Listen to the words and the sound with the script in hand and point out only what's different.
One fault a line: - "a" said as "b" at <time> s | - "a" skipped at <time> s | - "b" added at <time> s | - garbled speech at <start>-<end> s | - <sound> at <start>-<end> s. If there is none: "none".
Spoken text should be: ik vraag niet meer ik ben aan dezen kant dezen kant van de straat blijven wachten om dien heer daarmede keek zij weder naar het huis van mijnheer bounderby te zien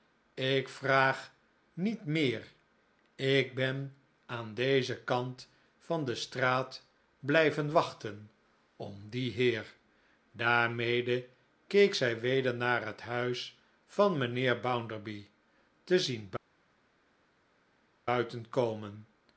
- "dezen kant" skipped at 5.5 s